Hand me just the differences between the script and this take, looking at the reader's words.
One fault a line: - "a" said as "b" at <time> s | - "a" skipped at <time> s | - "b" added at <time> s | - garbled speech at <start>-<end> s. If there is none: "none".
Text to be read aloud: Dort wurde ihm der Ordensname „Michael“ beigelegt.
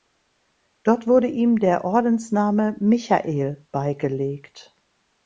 none